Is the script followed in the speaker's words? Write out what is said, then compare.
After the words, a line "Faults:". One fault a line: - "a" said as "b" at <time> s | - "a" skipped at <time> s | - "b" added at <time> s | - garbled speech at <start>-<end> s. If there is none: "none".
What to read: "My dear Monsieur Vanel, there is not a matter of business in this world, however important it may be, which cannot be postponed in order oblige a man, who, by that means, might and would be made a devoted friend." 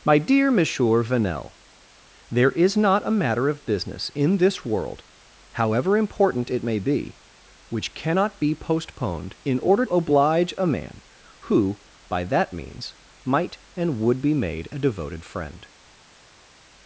"My dear Monsieur Vanel, there is not a matter of business in this world, however important it may be, which cannot be postponed in order oblige a man, who, by that means, might and would be made a devoted friend."
Faults:
none